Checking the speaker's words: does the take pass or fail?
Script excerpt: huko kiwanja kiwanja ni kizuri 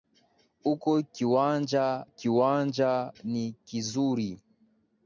pass